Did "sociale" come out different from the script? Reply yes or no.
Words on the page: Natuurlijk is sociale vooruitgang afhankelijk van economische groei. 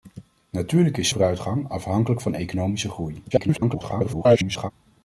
yes